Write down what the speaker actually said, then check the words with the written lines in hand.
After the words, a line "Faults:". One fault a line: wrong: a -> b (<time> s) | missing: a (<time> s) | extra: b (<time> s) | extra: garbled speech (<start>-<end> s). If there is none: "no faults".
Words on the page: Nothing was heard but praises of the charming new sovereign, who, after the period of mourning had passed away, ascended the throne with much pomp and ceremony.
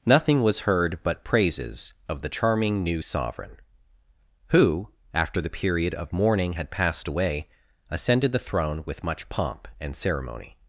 Nothing was heard but praises of the charming new sovereign, who, after the period of mourning had passed away, ascended the throne with much pomp and ceremony.
Faults:
no faults